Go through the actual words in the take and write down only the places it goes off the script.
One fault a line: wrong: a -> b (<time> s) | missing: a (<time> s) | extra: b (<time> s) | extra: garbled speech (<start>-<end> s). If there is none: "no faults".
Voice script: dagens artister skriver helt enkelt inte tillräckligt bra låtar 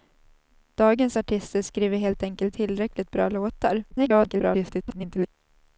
missing: inte (2.6 s)
extra: garbled speech (3.9-5.3 s)